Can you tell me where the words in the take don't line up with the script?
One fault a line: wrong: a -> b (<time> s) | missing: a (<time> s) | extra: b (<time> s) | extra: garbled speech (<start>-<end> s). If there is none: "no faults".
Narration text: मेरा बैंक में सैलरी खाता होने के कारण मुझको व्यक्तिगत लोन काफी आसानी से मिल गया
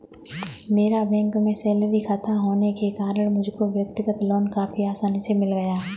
no faults